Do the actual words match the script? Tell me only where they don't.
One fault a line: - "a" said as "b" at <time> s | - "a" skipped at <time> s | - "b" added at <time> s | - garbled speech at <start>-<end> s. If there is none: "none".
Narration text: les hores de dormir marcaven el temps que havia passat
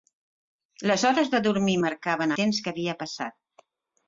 - "el" skipped at 2.4 s